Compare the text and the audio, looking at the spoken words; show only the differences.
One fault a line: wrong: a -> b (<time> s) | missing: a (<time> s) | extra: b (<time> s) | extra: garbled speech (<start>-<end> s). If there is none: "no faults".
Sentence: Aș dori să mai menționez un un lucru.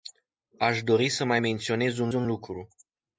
no faults